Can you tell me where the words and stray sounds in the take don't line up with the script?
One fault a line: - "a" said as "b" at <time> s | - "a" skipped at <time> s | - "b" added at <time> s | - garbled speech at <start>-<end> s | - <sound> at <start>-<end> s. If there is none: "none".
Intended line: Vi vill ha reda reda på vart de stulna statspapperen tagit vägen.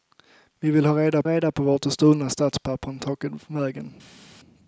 none